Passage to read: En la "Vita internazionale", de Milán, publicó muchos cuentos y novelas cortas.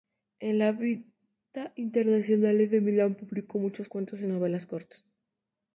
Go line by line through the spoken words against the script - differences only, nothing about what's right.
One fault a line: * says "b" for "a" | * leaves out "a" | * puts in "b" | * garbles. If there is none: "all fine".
all fine